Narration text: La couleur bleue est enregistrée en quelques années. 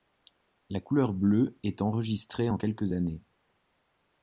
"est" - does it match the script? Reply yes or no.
yes